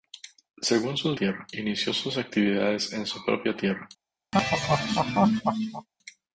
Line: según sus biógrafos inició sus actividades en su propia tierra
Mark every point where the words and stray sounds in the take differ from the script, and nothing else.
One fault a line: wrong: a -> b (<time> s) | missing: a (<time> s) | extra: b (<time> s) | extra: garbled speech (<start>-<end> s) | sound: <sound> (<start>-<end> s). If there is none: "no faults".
wrong: biógrafos -> tierra (1.1 s)
sound: laugh (4.3-5.9 s)